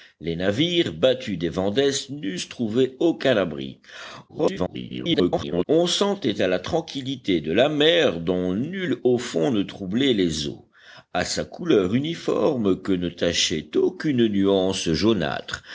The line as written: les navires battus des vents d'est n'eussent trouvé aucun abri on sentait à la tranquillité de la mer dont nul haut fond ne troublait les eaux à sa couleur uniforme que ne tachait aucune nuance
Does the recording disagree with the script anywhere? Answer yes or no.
yes